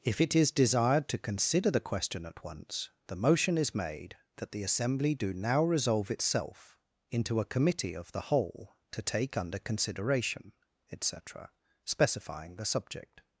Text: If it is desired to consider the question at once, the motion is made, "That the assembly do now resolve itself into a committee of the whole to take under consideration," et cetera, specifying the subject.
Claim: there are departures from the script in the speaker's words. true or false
false